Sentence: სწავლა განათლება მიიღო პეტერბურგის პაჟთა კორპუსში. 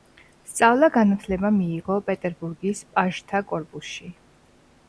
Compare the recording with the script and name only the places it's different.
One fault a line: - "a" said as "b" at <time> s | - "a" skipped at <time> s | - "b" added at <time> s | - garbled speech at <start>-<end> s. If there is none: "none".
none